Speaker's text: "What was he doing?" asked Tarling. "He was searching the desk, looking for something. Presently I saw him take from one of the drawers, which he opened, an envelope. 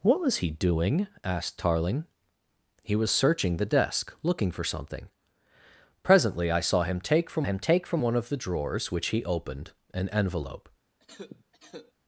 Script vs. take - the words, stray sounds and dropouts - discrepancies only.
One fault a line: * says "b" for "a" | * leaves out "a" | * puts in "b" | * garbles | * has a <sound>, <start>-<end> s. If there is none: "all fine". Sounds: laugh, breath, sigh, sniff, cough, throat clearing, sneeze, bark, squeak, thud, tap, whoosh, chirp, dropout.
* puts in "him take from"
* has a cough, 11.0-11.9 s